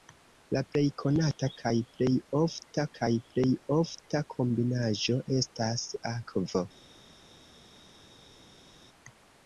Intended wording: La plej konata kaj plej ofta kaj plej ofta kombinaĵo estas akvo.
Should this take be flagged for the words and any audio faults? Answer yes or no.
no